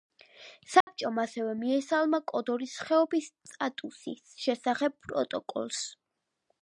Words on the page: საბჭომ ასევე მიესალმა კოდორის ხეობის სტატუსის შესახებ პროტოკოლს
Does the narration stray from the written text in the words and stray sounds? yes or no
yes